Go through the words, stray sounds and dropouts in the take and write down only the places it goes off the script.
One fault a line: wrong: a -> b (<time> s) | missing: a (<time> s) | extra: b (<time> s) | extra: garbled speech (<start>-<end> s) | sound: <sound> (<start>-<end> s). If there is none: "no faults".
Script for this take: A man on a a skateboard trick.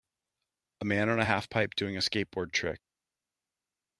extra: half pipe doing (1.2 s)